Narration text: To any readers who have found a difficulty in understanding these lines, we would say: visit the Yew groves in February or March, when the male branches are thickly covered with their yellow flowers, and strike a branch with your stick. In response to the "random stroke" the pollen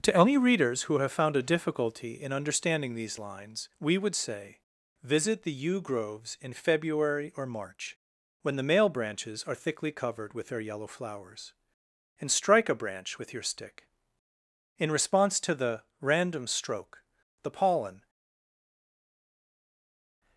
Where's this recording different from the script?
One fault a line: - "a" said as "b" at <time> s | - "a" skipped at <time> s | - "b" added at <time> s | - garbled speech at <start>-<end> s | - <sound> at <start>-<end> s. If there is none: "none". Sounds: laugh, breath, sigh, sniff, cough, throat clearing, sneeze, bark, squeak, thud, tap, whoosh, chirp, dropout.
none